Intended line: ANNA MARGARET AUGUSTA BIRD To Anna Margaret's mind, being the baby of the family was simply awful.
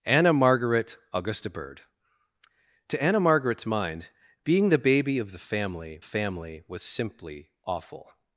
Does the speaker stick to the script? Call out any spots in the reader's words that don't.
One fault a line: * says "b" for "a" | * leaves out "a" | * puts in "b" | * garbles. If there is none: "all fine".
* puts in "family"